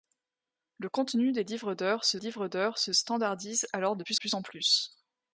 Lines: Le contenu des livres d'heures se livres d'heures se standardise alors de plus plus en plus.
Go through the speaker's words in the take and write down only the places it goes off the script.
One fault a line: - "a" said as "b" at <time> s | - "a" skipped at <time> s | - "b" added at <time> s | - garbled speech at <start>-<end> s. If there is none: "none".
none